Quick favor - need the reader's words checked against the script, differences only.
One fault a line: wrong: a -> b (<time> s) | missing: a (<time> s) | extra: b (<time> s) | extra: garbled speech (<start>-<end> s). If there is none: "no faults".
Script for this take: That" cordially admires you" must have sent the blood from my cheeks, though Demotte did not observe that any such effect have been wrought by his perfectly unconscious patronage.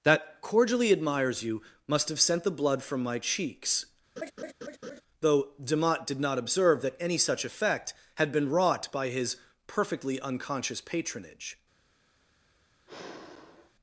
wrong: have -> had (8.2 s)